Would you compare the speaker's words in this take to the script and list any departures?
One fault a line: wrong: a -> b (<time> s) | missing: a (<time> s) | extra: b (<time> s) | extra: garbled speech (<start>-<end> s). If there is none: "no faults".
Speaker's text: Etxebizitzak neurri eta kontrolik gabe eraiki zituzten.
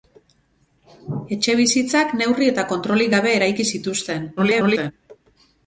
extra: garbled speech (4.4-4.9 s)